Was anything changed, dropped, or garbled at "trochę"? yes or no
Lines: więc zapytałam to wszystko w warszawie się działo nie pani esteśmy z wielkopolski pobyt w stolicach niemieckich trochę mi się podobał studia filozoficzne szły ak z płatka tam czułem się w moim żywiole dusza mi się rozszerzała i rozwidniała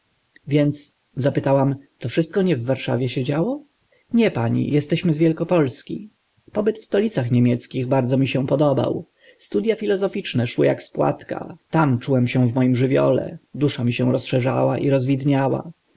yes